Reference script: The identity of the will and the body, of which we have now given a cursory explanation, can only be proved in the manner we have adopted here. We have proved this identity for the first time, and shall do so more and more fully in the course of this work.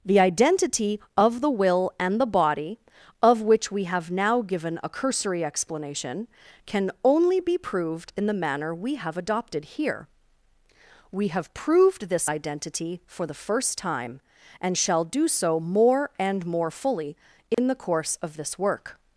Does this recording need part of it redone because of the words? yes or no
no